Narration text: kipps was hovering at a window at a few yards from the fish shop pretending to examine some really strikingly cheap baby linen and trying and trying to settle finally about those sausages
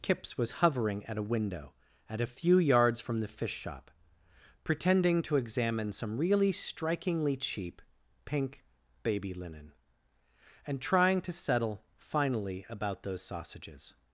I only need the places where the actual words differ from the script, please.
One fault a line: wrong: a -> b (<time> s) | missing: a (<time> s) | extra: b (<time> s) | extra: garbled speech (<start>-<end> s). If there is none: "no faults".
extra: pink (8.3 s)
missing: and trying (11.2 s)